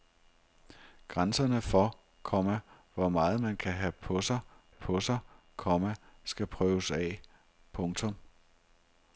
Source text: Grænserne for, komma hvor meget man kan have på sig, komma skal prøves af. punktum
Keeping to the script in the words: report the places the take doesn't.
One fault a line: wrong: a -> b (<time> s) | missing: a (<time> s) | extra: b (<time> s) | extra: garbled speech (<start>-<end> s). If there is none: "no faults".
extra: på sig (4.7 s)